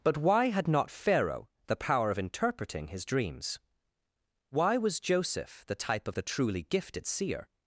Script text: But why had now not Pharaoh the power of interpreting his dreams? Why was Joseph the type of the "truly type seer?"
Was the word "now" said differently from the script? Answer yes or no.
yes